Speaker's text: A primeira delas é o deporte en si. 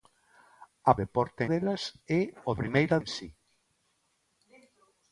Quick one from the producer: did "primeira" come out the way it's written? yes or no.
no